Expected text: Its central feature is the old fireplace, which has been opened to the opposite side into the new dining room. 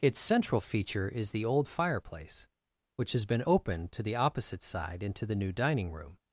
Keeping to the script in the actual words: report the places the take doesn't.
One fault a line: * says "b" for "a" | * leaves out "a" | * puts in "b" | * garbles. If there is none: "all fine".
all fine